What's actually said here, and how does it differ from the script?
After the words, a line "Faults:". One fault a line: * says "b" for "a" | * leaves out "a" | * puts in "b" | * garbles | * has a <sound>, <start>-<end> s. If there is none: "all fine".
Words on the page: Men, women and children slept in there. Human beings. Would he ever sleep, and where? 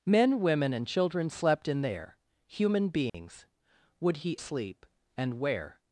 Men, women and children slept in there. Human beings. Would he sleep, and where?
Faults:
* has a dropout, 3.1-3.1 s
* leaves out "ever"